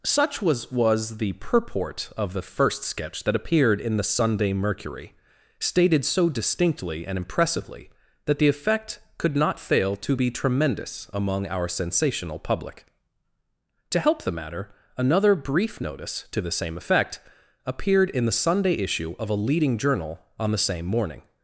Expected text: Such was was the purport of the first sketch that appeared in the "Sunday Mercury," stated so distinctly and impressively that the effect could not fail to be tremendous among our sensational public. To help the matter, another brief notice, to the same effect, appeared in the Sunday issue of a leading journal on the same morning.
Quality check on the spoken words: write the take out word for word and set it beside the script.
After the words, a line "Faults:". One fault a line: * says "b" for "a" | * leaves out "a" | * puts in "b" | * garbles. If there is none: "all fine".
Such was was the purport of the first sketch that appeared in the "Sunday Mercury," stated so distinctly and impressively that the effect could not fail to be tremendous among our sensational public. To help the matter, another brief notice, to the same effect, appeared in the Sunday issue of a leading journal on the same morning.
Faults:
all fine